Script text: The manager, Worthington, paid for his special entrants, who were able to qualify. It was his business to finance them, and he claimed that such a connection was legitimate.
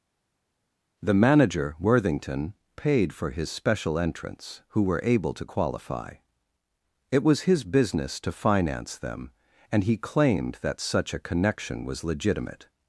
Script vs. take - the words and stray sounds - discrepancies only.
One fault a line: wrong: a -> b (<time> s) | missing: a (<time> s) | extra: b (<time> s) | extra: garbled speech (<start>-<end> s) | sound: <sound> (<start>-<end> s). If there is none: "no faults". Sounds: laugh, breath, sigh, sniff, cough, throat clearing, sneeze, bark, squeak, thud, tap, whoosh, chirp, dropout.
no faults